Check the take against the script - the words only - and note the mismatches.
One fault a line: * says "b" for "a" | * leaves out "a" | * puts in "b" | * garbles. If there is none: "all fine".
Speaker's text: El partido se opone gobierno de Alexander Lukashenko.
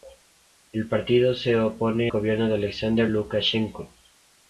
all fine